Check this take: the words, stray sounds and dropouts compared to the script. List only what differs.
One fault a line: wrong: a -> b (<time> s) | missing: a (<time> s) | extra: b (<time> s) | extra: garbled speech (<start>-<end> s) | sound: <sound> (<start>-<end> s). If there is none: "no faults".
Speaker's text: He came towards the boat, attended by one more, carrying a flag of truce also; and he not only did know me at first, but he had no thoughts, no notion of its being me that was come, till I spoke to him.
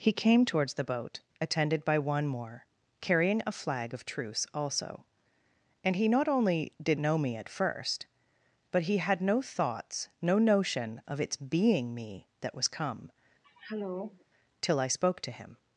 sound: throat clearing (13.4-14.3 s)